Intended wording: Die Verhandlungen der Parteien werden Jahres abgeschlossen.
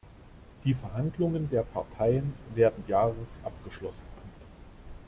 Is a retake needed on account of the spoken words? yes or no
no